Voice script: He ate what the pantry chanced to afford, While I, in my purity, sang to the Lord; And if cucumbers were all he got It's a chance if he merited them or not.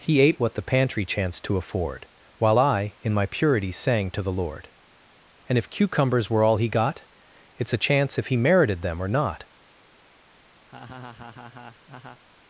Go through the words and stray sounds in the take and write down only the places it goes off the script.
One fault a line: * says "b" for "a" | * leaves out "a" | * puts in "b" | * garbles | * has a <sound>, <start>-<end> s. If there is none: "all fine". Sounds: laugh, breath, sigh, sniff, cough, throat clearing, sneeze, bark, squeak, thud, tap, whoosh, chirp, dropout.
* has a laugh, 10.7-12.2 s